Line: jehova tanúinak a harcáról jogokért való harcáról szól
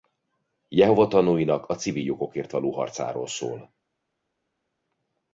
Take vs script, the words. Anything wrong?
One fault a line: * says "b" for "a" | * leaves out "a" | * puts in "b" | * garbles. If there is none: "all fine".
* says "civil" for "harcáról"